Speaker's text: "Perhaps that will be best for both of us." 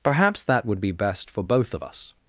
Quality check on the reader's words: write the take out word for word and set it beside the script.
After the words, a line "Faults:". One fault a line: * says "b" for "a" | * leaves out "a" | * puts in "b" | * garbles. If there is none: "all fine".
"Perhaps that would be best for both of us."
Faults:
* says "would" for "will"